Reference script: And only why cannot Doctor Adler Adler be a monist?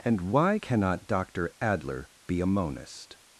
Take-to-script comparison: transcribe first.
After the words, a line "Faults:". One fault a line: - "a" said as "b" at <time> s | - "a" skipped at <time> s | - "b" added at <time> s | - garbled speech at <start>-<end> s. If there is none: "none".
And why cannot Doctor Adler be a monist?
Faults:
- "only" skipped at 0.2 s
- "Adler" skipped at 2.1 s